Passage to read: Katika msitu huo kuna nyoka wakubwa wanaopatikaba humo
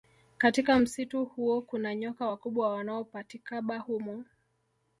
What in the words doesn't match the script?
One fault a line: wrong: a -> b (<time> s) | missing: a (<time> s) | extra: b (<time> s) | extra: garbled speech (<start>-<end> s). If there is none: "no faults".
no faults